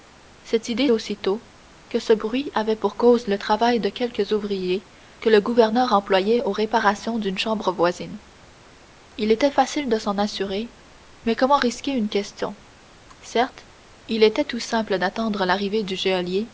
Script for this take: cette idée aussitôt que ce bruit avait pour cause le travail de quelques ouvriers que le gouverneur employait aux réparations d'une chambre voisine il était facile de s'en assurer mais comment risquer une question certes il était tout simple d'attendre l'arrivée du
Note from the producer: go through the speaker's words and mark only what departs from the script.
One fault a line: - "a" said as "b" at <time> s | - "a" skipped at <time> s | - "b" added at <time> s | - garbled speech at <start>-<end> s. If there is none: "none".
none